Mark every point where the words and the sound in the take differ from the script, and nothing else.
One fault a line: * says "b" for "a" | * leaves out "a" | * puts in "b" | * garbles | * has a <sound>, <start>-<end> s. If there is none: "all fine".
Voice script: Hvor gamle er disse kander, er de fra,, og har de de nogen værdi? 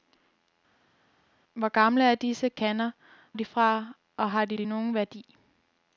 all fine